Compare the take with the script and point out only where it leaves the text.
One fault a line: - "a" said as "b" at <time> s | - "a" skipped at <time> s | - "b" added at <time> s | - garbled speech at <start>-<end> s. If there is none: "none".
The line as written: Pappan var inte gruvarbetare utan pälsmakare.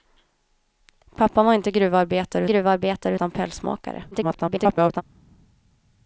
- "gruvarbetare" added at 2.4 s
- garbled speech at 4.1-5.0 s